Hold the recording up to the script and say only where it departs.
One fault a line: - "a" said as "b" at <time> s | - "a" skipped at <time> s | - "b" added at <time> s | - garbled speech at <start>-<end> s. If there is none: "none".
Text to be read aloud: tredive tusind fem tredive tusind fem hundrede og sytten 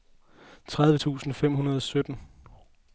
- "tredive tusind fem" skipped at 1.5 s